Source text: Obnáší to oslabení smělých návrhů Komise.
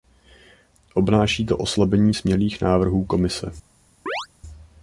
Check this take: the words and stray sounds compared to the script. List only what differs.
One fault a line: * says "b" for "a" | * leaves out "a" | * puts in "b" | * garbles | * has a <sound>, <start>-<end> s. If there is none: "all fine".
* has a chirp, 4.1-4.3 s